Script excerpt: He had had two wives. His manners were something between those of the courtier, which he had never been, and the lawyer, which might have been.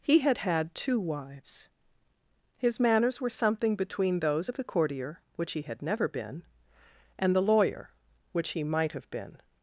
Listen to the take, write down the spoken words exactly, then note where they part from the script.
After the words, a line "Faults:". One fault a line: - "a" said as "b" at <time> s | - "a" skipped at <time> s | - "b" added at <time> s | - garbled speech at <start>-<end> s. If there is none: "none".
He had had two wives. His manners were something between those of the courtier, which he had never been, and the lawyer, which he might have been.
Faults:
- "he" added at 8.5 s